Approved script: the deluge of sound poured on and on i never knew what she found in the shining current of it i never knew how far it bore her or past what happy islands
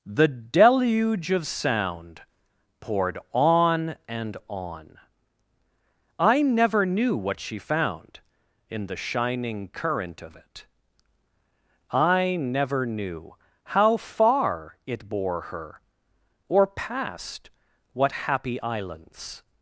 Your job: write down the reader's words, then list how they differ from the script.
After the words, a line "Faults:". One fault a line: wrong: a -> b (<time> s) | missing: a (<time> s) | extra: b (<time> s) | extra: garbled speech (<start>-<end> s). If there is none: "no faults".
the deluge of sound poured on and on i never knew what she found in the shining current of it i never knew how far it bore her or past what happy islands
Faults:
no faults